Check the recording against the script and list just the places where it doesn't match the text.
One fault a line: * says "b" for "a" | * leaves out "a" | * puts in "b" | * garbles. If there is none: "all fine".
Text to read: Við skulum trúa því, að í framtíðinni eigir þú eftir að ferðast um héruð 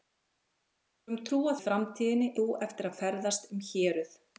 * leaves out "því að"
* leaves out "eigir"